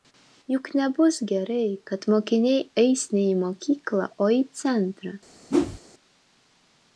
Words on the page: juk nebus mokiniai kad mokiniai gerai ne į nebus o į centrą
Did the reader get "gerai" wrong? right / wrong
wrong